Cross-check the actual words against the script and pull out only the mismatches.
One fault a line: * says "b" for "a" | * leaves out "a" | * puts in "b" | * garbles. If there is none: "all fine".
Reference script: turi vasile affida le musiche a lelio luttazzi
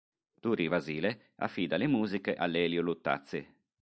all fine